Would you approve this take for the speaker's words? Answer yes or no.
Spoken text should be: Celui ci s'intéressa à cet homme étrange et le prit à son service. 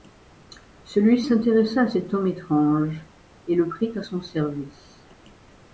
no